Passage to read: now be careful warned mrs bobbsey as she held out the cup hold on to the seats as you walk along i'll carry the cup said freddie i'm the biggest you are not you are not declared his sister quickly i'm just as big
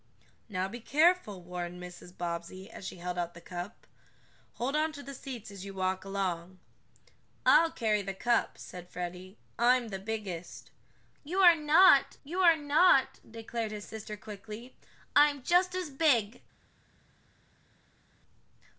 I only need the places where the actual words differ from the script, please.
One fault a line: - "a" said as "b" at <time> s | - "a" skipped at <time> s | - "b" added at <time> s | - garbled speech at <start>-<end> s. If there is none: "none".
none